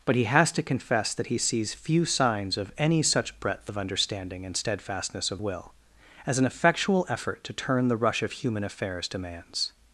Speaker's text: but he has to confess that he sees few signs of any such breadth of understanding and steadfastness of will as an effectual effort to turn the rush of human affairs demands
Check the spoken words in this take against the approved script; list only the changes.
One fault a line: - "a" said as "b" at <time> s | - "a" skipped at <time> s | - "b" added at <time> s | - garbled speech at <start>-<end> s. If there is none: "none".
none